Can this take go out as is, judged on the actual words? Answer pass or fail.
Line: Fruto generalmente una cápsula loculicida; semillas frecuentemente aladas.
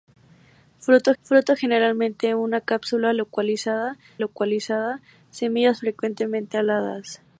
fail